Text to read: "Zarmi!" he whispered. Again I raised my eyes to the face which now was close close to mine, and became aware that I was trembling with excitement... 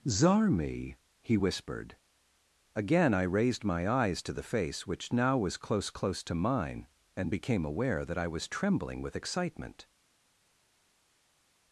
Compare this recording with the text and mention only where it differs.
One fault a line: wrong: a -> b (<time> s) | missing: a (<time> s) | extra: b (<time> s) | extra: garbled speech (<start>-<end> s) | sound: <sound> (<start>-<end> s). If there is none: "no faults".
no faults